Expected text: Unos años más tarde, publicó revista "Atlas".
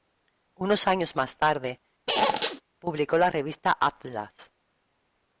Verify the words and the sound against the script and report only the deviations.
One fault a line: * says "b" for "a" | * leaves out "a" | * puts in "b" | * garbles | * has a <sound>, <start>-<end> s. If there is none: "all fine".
* has a squeak, 2.1-2.6 s
* puts in "la"